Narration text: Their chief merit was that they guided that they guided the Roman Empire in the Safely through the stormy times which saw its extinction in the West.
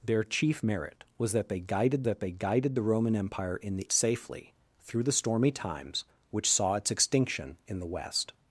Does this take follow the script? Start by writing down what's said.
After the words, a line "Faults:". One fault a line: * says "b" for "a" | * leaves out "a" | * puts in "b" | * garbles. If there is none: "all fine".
Their chief merit was that they guided that they guided the Roman Empire in the Safely through the stormy times which saw its extinction in the West.
Faults:
all fine